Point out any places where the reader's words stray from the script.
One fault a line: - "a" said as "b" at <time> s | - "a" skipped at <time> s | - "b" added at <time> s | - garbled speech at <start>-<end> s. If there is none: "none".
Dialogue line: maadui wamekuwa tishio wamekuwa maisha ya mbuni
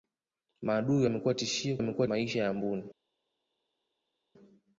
none